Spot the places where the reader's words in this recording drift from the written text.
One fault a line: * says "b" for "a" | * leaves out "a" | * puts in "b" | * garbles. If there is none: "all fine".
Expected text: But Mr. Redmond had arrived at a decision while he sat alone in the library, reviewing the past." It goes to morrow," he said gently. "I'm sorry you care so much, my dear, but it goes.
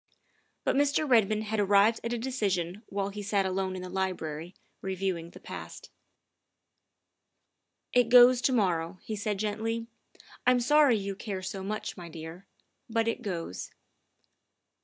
all fine